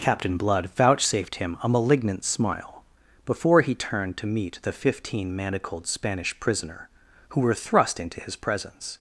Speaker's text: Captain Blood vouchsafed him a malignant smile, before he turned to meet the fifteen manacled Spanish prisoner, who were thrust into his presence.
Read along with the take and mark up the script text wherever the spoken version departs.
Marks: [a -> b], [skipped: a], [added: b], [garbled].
Captain Blood vouchsafed him a malignant smile, before he turned to meet the fifteen manacled Spanish prisoner, who were thrust into his presence.